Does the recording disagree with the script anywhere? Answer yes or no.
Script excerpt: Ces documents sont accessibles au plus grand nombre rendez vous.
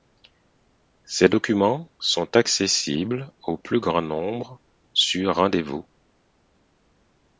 yes